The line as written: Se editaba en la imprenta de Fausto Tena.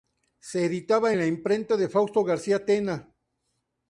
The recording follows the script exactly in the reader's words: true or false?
false